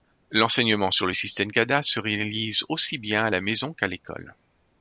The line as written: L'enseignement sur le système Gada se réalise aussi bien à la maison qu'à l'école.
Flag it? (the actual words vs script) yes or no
no